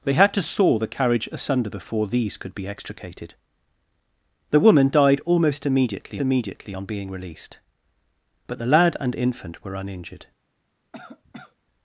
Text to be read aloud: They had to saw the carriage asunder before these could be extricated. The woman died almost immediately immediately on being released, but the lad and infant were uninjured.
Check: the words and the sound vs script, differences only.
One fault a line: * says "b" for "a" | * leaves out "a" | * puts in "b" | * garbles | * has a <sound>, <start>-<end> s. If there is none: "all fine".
* has a cough, 10.9-11.6 s